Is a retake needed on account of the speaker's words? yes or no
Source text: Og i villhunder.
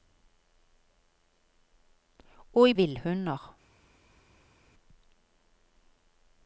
no